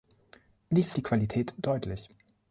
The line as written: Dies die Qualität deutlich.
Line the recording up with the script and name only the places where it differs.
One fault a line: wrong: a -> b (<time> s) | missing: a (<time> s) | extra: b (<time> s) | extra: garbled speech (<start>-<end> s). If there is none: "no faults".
no faults